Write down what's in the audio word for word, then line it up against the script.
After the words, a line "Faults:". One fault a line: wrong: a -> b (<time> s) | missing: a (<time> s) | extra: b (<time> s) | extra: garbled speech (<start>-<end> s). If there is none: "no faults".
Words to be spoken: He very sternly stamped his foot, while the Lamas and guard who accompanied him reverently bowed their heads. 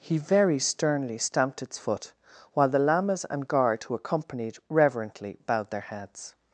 He very sternly stamped its foot, while the Lamas and guard who accompanied reverently bowed their heads.
Faults:
wrong: his -> its (1.6 s)
missing: him (4.6 s)